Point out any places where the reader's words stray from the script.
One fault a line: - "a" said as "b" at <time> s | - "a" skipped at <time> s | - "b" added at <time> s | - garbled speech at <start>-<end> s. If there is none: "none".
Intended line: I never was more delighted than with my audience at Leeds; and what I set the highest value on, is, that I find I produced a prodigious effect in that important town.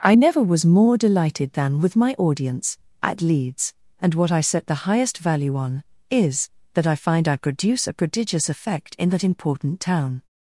- "produced" said as "produce" at 7.4 s